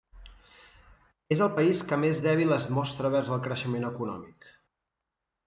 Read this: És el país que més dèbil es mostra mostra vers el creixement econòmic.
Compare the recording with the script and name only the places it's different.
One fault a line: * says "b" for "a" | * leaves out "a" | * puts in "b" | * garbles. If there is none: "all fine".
* leaves out "mostra"